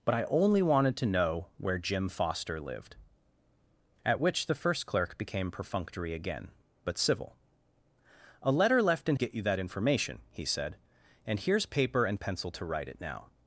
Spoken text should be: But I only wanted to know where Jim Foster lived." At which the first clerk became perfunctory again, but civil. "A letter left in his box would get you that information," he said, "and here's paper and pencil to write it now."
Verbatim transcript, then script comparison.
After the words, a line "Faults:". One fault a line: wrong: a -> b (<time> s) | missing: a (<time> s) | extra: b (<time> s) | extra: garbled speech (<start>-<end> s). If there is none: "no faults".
But I only wanted to know where Jim Foster lived." At which the first clerk became perfunctory again, but civil. "A letter left in get you that information," he said, "and here's paper and pencil to write it now."
Faults:
missing: his box would (9.2 s)